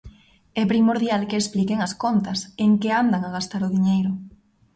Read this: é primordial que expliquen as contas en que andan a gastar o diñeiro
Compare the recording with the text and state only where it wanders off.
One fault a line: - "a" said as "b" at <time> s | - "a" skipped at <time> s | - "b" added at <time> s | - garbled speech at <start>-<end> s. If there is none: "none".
none